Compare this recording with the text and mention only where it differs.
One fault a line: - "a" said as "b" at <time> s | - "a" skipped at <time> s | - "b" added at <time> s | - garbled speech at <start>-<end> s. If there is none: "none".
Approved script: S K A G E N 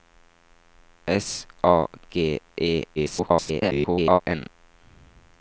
- "K" skipped at 1.4 s
- garbled speech at 3.0-4.2 s